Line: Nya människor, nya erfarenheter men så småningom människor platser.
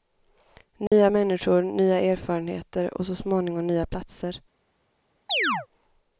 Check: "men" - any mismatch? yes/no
yes